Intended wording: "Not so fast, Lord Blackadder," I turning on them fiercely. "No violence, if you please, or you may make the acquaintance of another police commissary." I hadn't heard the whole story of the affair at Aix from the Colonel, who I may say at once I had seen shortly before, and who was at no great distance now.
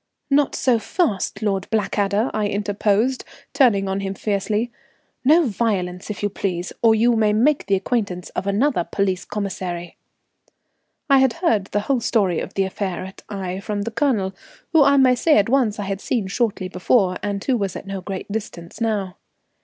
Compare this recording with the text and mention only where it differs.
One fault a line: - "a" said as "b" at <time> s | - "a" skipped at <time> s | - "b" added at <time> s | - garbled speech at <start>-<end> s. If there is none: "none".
- "interposed" added at 2.5 s
- "them" said as "him" at 4.0 s
- "hadn't" said as "had" at 11.2 s